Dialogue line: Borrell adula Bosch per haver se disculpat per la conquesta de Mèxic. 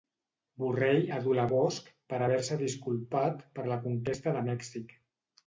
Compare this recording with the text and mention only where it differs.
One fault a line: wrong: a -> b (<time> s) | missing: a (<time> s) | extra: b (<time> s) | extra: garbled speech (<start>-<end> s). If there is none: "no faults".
no faults